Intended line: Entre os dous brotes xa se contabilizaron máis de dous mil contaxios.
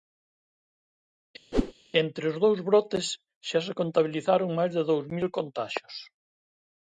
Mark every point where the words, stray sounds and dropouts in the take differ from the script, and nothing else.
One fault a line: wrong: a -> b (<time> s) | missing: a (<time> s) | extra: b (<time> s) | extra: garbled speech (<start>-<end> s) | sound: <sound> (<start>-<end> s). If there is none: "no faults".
sound: whoosh (1.5-1.7 s)